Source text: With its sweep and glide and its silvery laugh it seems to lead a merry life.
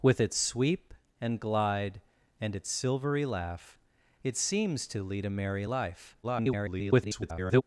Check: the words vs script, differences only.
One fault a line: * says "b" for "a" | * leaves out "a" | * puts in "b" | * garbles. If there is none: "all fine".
* garbles